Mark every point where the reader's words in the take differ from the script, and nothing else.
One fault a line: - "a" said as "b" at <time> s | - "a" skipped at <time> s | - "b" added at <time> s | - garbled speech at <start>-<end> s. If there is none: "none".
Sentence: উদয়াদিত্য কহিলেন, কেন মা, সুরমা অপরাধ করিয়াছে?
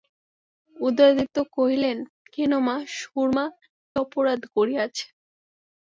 none